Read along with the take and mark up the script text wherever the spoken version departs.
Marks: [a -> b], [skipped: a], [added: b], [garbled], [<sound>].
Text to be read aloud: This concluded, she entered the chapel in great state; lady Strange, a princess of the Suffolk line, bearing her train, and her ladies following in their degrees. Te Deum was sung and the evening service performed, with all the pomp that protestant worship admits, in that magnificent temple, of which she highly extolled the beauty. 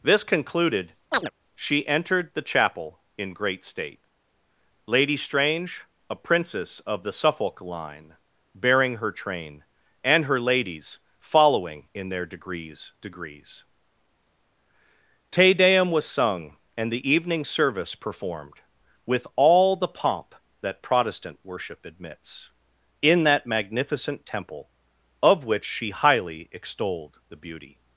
This concluded, [chirp] she entered the chapel in great state; lady Strange, a princess of the Suffolk line, bearing her train, and her ladies following in their degrees. [added: degrees] Te Deum was sung and the evening service performed, with all the pomp that protestant worship admits, in that magnificent temple, of which she highly extolled the beauty.